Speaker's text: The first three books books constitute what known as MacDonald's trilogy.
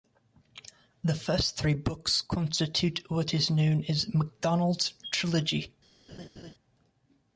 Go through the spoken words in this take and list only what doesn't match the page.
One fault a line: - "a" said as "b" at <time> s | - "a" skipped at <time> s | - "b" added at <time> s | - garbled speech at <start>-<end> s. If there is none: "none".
- "books" skipped at 2.2 s
- "is" added at 3.3 s